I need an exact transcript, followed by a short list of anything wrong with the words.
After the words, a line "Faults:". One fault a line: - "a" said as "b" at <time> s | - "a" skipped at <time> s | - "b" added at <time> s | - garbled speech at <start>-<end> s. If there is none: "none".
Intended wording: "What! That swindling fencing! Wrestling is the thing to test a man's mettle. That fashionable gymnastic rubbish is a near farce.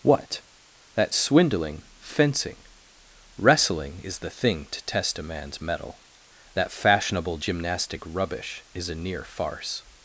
"What! That swindling fencing! Wrestling is the thing to test a man's mettle. That fashionable gymnastic rubbish is a near farce.
Faults:
none